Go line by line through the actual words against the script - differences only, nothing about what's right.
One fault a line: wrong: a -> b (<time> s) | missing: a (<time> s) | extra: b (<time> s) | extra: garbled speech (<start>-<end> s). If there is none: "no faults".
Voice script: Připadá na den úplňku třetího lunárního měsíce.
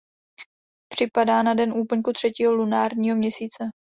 no faults